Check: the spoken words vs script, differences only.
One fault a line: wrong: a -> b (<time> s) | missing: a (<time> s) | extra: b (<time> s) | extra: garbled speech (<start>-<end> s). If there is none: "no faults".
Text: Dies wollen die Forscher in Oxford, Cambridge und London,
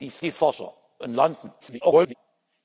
missing: wollen (0.2 s)
missing: in Oxford Cambridge (0.7 s)
extra: garbled speech (1.6-2.1 s)